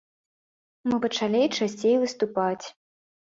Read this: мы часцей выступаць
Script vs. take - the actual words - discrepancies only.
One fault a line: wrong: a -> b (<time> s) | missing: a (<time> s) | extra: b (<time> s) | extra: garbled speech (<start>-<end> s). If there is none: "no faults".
extra: пачалі (1.0 s)